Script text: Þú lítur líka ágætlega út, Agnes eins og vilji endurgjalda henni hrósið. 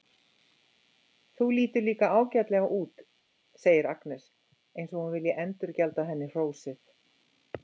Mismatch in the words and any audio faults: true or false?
true